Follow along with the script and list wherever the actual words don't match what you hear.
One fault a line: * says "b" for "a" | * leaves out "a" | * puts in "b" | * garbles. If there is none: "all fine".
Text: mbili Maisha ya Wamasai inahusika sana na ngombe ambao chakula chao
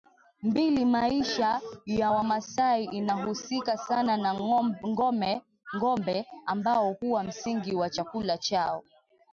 * puts in "huwa msingi wa"